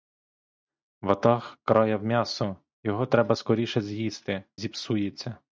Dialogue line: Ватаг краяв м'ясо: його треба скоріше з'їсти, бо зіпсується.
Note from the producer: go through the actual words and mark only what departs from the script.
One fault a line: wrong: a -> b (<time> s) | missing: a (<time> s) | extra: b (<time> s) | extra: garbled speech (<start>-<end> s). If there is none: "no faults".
missing: бо (4.4 s)